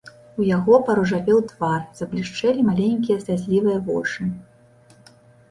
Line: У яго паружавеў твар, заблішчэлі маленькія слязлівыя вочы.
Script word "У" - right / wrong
right